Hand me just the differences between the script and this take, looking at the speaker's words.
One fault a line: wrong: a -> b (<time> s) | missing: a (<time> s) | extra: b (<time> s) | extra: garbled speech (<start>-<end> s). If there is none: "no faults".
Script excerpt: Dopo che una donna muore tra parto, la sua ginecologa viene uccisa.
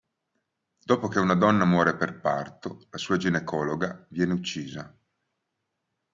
wrong: tra -> per (1.9 s)